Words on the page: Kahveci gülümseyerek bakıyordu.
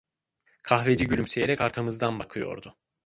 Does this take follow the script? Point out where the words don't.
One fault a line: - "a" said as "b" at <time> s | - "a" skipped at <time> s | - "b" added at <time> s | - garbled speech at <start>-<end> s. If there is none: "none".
- "arkamızdan" added at 1.6 s